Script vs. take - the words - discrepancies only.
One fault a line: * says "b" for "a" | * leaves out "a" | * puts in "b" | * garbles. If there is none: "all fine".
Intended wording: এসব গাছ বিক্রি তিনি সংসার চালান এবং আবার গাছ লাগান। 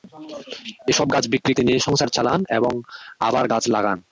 all fine